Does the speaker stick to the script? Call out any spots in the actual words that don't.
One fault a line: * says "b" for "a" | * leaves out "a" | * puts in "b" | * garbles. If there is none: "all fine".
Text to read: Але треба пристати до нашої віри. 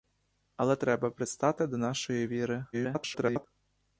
* garbles